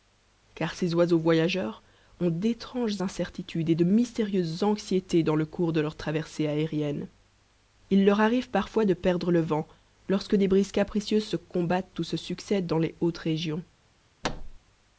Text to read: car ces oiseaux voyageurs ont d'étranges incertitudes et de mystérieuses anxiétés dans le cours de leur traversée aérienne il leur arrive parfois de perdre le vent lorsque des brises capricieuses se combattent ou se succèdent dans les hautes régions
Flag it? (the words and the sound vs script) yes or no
yes